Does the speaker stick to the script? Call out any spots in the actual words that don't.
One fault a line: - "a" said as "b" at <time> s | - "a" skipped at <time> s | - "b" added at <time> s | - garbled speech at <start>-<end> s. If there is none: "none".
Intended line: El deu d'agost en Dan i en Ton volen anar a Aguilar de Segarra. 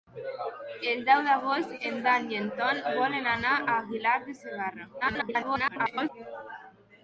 - garbled speech at 5.0-6.1 s